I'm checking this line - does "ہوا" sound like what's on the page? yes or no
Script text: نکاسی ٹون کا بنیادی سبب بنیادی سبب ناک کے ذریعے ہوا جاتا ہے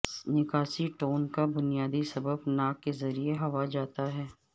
yes